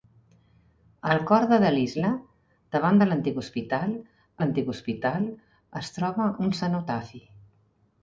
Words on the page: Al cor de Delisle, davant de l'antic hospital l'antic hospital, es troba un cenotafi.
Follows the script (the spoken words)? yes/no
yes